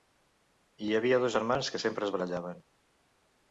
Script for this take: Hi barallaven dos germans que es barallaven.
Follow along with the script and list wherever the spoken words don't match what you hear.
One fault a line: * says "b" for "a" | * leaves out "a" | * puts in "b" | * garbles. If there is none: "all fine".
* says "havia" for "barallaven"
* puts in "sempre"